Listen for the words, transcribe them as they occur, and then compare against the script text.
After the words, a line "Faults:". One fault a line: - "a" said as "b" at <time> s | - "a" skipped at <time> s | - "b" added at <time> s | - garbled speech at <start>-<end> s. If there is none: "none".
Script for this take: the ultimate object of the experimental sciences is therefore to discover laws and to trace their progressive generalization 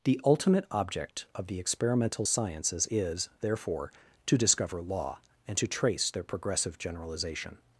the ultimate object of the experimental sciences is therefore to discover law and to trace their progressive generalization
Faults:
- "laws" said as "law" at 4.8 s